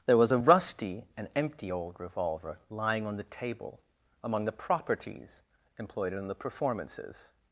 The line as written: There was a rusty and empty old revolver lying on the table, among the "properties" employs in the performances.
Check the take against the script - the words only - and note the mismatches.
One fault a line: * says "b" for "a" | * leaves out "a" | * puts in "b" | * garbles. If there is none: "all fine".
* says "employed" for "employs"